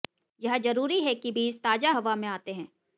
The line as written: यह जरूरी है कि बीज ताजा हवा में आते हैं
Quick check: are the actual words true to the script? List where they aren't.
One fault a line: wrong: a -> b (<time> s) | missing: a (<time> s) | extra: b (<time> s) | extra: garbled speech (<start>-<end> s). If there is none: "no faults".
no faults